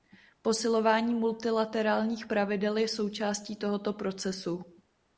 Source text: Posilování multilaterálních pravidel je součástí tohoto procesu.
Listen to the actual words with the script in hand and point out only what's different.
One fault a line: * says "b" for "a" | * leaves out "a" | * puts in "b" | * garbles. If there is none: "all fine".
all fine